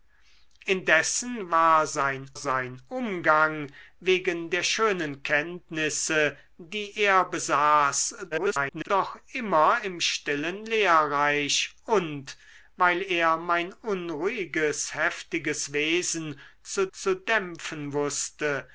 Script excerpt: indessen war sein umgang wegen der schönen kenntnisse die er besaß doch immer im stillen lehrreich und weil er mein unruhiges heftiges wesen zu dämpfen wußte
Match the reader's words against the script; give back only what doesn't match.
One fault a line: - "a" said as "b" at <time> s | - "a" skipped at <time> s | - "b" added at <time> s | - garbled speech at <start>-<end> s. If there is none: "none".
- "sein" added at 2.3 s
- garbled speech at 8.3-8.9 s
- "zu" added at 16.9 s